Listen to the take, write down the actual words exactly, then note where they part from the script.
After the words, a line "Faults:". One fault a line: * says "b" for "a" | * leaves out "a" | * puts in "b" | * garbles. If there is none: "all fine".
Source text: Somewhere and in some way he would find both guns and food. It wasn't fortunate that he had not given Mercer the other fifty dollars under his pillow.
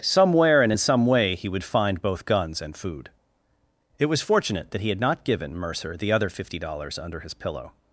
Somewhere and in some way he would find both guns and food. It was fortunate that he had not given Mercer the other fifty dollars under his pillow.
Faults:
* says "was" for "wasn't"